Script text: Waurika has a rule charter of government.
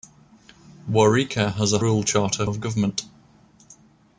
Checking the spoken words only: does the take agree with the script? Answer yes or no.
yes